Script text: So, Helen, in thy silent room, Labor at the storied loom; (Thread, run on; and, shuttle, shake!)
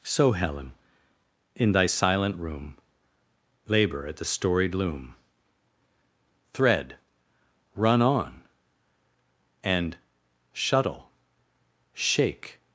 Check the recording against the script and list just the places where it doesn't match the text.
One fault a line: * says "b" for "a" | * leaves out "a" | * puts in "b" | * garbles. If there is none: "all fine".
all fine